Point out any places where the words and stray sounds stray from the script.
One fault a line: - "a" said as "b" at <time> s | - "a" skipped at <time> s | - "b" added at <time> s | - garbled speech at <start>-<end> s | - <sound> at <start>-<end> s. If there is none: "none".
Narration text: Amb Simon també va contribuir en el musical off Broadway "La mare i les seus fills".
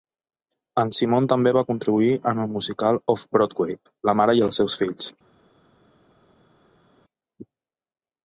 - "Amb" said as "En" at 0.8 s
- "les" said as "els" at 4.5 s